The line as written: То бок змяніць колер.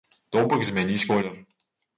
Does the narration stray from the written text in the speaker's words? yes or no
no